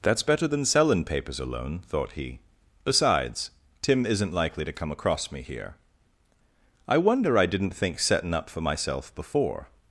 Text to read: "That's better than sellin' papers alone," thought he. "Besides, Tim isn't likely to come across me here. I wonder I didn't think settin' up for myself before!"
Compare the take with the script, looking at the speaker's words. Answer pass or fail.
pass